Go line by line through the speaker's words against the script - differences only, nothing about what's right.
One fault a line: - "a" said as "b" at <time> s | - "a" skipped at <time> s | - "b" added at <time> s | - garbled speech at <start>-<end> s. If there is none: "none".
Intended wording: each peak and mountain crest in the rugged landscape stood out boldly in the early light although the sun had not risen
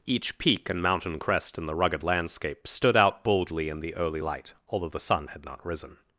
none